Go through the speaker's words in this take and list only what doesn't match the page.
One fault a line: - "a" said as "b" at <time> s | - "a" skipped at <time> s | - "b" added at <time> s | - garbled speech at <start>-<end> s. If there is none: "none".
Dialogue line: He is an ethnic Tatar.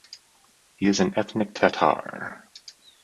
none